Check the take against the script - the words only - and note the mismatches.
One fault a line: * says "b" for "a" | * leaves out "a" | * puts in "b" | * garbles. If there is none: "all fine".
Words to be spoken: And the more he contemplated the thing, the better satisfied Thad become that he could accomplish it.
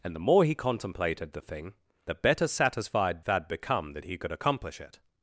all fine